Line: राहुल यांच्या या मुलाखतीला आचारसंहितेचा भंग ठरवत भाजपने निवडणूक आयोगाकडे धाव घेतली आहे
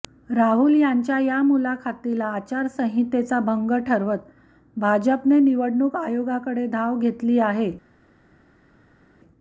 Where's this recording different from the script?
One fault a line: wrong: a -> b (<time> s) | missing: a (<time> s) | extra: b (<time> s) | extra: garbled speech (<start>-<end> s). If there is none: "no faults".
no faults